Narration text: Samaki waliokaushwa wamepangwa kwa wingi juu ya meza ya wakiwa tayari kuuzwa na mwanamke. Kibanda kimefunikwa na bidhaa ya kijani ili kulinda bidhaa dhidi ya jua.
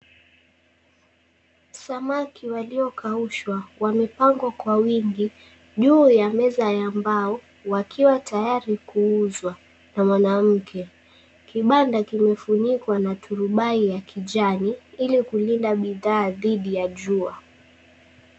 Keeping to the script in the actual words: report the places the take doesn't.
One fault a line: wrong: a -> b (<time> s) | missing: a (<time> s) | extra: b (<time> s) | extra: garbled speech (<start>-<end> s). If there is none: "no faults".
extra: mbao (6.9 s)
wrong: bidhaa -> turubai (13.2 s)